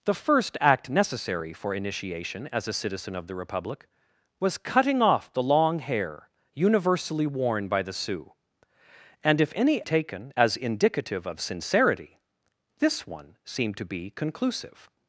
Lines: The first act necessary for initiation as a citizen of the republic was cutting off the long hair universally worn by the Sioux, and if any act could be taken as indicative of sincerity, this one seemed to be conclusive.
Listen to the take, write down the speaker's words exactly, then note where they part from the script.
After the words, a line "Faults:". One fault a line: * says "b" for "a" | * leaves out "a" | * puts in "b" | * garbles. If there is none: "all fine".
The first act necessary for initiation as a citizen of the republic was cutting off the long hair universally worn by the Sioux, and if any taken as indicative of sincerity, this one seemed to be conclusive.
Faults:
* leaves out "act could be"